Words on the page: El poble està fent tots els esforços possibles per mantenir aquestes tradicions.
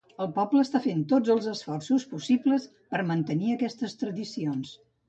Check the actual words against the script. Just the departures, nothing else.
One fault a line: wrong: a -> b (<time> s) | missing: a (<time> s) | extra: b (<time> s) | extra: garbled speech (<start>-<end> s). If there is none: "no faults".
no faults